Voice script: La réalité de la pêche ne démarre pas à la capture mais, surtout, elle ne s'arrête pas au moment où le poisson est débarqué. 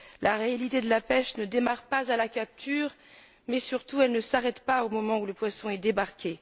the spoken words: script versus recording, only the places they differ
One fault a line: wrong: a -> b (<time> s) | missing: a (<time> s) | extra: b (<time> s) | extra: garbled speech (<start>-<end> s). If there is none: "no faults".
no faults